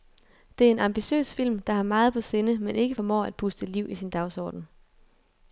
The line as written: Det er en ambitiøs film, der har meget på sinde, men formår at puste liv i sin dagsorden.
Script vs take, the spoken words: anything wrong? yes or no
yes